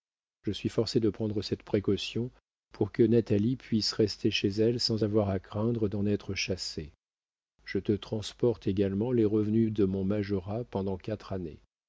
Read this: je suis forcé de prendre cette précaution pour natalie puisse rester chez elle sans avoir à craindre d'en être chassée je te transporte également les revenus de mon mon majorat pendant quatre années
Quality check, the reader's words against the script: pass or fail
fail